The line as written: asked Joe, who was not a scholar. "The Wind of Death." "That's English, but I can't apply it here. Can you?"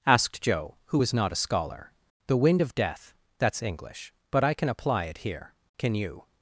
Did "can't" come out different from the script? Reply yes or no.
yes